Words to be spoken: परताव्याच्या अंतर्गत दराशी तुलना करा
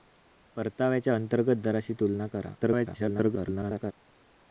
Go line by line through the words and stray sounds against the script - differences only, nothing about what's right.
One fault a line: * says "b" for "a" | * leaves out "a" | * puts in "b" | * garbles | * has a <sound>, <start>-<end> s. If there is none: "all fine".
* garbles